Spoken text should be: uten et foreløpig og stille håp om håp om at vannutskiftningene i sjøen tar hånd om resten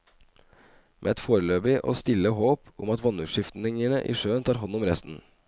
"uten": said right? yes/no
no